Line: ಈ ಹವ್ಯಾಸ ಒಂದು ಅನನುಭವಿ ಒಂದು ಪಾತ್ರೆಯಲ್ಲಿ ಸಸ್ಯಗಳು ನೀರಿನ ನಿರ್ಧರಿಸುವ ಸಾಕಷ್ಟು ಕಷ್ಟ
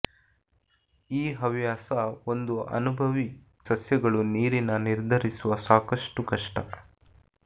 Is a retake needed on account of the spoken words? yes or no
yes